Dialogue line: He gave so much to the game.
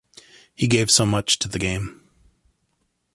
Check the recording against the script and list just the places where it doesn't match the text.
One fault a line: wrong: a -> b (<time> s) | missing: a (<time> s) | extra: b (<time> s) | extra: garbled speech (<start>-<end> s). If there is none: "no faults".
no faults